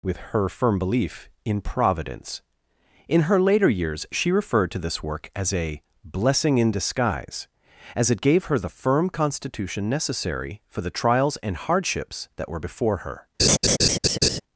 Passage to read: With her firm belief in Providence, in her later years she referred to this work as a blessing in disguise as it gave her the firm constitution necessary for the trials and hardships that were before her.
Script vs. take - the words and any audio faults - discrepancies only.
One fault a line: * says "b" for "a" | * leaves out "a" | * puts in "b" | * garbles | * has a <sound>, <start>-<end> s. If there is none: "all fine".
* has a laugh, 13.4-14.4 s